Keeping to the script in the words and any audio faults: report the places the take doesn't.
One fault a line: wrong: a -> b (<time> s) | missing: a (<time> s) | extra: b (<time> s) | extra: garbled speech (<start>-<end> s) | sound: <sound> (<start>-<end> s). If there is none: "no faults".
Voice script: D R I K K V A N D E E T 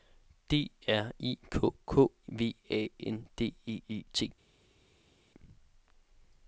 no faults